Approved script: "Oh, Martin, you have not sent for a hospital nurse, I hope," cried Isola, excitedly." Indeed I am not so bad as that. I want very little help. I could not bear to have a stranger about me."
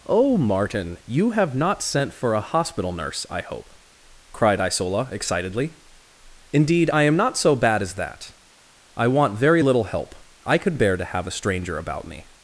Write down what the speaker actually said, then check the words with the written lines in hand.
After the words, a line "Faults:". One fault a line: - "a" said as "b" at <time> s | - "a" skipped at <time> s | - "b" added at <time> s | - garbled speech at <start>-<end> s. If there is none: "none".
"Oh, Martin, you have not sent for a hospital nurse, I hope," cried Isola, excitedly." Indeed I am not so bad as that. I want very little help. I could bear to have a stranger about me."
Faults:
- "not" skipped at 10.8 s